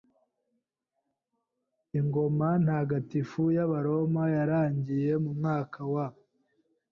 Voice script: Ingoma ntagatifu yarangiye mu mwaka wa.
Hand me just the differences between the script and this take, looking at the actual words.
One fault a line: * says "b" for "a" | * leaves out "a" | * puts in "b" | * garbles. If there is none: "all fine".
* puts in "y'Abaroma"